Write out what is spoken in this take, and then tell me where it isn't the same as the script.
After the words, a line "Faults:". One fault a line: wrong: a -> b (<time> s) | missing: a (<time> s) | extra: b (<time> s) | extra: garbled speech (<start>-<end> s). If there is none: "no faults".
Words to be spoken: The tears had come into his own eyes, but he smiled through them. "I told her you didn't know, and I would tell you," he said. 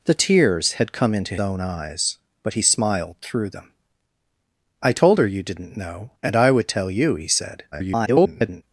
The tears had come into own eyes, but he smiled through them. "I told her you didn't know, and I would tell you," he said. [garbled]
Faults:
missing: his (1.4 s)
extra: garbled speech (7.7-8.6 s)